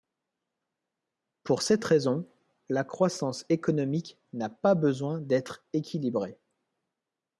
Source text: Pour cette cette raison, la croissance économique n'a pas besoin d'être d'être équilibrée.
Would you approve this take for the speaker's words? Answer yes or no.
no